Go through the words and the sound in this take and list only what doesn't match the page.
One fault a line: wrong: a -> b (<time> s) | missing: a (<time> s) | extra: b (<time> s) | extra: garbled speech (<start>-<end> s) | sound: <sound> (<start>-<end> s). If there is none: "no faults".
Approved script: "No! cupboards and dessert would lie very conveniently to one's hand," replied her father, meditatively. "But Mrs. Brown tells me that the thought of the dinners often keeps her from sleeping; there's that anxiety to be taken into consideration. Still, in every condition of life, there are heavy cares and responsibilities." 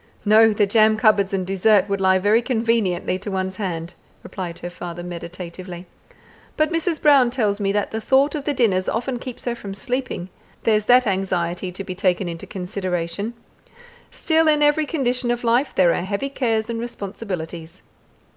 extra: the jam (0.5 s)